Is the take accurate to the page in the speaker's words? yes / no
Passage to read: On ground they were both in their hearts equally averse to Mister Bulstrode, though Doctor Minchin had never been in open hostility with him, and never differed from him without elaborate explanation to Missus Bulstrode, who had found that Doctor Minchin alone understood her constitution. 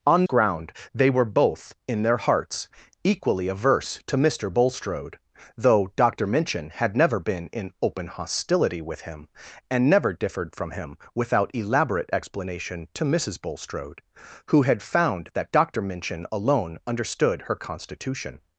yes